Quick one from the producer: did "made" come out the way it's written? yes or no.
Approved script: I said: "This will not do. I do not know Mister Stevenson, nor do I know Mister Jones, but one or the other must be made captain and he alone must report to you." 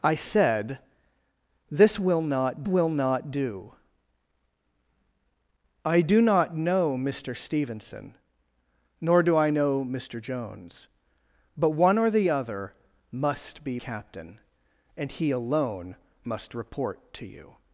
no